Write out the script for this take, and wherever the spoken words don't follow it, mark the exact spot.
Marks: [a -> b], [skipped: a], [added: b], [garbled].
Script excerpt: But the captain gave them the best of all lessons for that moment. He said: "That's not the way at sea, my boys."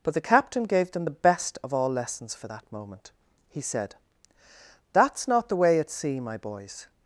But the captain gave them the best of all lessons for that moment. He said: "That's not the way at sea, my boys."